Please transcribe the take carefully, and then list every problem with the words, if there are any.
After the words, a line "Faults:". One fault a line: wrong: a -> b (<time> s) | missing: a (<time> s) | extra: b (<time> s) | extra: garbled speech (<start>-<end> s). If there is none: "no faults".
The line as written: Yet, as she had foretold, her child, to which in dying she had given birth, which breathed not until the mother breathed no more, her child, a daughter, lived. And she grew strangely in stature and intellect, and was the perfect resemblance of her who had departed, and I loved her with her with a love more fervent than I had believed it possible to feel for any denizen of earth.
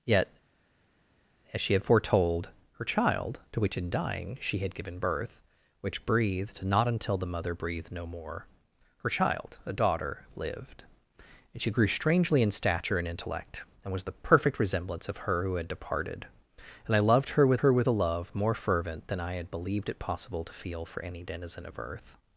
Yet, as she had foretold, her child, to which in dying she had given birth, which breathed not until the mother breathed no more, her child, a daughter, lived. And she grew strangely in stature and intellect, and was the perfect resemblance of her who had departed, and I loved her with her with a love more fervent than I had believed it possible to feel for any denizen of earth.
Faults:
no faults